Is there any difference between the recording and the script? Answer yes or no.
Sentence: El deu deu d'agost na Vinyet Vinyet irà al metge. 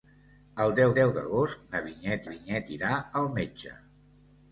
no